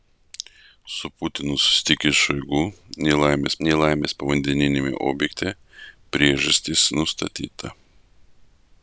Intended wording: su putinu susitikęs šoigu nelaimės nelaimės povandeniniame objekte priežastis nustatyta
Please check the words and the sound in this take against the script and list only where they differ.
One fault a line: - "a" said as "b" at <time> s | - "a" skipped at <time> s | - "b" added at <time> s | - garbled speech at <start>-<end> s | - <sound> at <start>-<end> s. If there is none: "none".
none